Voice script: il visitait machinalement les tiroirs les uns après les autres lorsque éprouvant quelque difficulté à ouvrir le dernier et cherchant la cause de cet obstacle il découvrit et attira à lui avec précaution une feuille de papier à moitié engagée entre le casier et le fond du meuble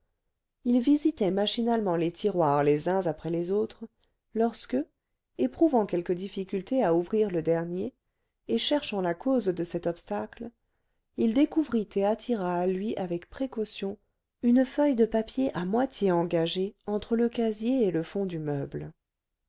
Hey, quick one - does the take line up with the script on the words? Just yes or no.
yes